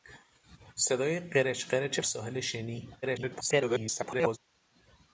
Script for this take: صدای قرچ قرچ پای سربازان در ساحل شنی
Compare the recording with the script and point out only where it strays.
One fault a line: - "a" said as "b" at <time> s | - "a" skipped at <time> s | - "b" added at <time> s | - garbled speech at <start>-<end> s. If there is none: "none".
- "پای سربازان در" skipped at 2.0 s
- garbled speech at 3.0-4.4 s